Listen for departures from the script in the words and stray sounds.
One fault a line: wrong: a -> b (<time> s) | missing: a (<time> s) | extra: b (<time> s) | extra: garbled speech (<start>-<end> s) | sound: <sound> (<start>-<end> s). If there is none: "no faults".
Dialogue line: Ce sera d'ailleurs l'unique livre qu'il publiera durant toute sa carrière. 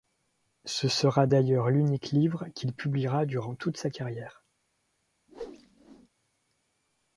sound: whoosh (5.3-6.1 s)